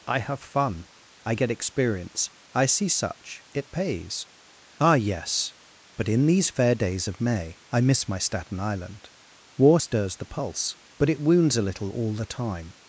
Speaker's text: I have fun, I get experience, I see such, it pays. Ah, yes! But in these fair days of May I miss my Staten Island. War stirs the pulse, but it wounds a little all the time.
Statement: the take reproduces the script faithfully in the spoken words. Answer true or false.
true